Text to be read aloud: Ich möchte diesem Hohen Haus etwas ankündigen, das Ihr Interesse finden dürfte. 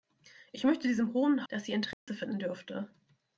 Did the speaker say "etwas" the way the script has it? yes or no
no